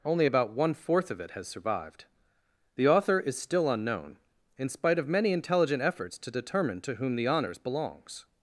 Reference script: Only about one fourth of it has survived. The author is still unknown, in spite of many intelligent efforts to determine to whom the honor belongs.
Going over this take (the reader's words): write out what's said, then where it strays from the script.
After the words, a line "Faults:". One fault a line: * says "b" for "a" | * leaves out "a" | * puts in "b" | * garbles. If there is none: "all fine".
Only about one fourth of it has survived. The author is still unknown, in spite of many intelligent efforts to determine to whom the honors belongs.
Faults:
* says "honors" for "honor"